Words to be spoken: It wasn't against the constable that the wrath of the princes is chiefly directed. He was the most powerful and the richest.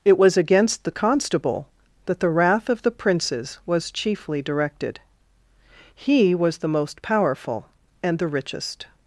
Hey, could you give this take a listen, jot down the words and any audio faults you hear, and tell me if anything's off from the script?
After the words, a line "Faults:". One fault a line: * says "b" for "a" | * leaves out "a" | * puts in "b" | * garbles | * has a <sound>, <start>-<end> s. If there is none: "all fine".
It was against the constable that the wrath of the princes was chiefly directed. He was the most powerful and the richest.
Faults:
* says "was" for "wasn't"
* says "was" for "is"